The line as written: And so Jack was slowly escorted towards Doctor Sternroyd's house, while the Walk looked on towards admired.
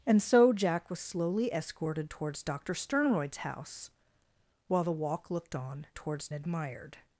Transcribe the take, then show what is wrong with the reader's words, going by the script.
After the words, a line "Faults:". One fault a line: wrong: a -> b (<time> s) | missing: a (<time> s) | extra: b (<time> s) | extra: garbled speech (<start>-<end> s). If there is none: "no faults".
And so Jack was slowly escorted towards Doctor Sternroyd's house, while the Walk looked on towards admired.
Faults:
no faults